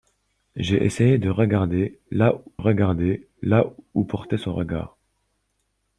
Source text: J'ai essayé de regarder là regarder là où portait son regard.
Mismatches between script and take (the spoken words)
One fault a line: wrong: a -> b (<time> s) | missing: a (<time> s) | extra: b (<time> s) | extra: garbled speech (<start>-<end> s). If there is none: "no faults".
no faults